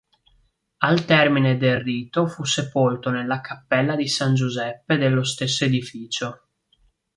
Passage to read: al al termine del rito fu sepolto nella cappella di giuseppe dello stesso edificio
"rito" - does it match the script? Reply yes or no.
yes